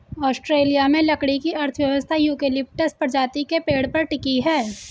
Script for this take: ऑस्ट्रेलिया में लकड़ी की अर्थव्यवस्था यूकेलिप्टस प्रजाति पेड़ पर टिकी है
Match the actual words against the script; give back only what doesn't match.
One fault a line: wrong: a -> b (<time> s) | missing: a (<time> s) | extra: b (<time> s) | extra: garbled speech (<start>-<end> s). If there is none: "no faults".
extra: के (3.4 s)